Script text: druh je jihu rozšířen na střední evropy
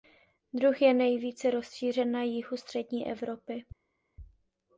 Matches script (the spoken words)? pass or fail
fail